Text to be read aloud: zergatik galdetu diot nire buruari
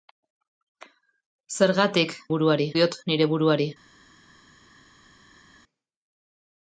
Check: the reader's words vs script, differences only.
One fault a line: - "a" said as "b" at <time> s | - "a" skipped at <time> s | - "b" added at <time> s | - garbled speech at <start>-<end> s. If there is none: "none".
- "galdetu" said as "buruari" at 2.3 s